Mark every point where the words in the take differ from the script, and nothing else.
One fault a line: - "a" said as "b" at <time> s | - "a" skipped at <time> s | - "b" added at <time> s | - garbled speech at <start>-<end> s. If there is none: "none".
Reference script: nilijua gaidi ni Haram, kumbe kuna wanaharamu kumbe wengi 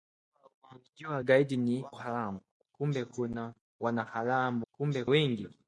none